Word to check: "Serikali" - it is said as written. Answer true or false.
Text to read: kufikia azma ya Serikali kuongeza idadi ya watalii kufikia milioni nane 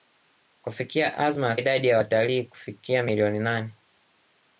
false